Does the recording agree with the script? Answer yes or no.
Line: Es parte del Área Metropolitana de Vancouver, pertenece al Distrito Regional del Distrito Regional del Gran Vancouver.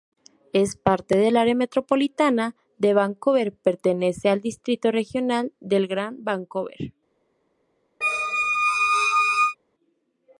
no